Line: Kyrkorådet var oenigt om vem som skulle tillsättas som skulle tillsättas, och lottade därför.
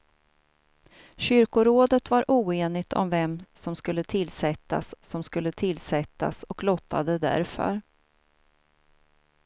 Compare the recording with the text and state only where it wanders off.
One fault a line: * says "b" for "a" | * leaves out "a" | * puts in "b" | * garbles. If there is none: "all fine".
all fine